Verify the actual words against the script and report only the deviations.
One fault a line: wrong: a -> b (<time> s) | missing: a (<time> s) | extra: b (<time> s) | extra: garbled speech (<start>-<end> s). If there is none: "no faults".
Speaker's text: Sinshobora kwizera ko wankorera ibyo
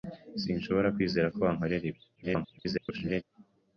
extra: garbled speech (2.2-3.2 s)